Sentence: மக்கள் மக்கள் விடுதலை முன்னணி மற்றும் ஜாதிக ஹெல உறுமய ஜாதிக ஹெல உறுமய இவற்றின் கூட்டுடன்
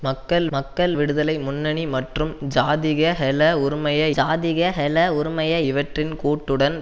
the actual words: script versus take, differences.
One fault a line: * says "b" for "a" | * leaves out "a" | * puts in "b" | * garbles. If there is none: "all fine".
all fine